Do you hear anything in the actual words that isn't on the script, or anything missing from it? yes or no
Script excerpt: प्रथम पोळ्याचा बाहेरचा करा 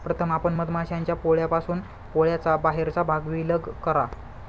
yes